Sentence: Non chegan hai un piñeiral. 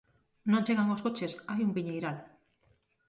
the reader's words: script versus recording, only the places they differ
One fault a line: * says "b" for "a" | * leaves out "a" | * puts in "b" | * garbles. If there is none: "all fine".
* puts in "os coches"